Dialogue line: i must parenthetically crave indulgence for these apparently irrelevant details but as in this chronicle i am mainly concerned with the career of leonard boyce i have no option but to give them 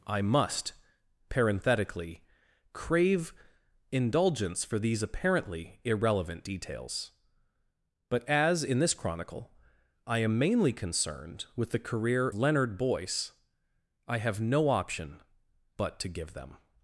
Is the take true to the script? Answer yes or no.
no